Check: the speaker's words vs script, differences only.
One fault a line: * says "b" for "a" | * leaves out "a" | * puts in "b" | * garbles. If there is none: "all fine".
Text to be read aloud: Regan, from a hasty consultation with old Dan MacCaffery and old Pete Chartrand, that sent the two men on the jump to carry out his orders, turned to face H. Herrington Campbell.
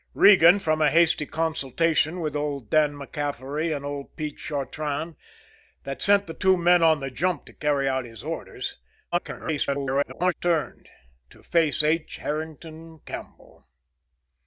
* garbles